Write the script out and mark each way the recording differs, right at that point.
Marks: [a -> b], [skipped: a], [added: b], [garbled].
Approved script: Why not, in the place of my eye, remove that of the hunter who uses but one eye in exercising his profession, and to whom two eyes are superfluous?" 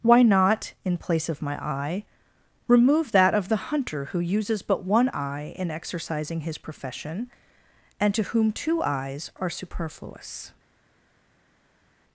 Why not, in [skipped: the] place of my eye, remove that of the hunter who uses but one eye in exercising his profession, and to whom two eyes are superfluous?"